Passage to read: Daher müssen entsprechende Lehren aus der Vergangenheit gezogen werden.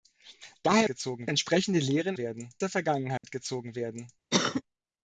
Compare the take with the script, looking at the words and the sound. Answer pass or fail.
fail